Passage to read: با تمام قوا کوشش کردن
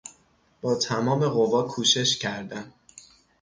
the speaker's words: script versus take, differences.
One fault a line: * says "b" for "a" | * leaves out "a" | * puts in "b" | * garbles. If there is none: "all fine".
all fine